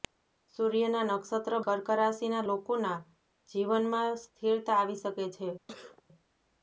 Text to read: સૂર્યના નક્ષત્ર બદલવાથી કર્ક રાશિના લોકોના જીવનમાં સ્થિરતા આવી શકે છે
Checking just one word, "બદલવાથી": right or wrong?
wrong